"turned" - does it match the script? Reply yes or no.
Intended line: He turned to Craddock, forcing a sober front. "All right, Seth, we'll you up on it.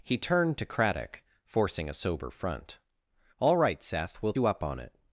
yes